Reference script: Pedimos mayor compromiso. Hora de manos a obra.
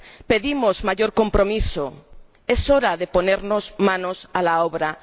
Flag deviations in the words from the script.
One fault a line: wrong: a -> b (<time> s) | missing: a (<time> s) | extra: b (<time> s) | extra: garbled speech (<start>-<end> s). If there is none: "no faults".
extra: Es (2.5 s)
extra: ponernos (3.1 s)
extra: la (4.4 s)